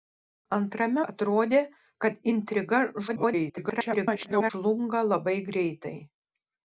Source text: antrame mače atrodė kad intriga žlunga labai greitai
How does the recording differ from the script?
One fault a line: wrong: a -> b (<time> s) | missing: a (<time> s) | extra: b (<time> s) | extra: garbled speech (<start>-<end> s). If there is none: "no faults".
missing: mače (1.0 s)
extra: garbled speech (3.1-4.5 s)